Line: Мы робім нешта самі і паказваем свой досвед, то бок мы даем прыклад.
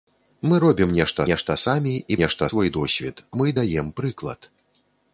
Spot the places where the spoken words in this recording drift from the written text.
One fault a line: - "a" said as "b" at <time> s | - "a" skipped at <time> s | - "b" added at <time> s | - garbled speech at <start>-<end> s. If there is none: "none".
- "нешта" added at 1.3 s
- "паказваем" said as "нешта" at 2.2 s
- "то бок" skipped at 3.2 s